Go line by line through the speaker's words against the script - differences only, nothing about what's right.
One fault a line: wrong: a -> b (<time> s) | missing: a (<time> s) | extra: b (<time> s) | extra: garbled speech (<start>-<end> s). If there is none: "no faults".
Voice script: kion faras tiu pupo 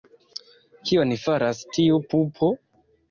no faults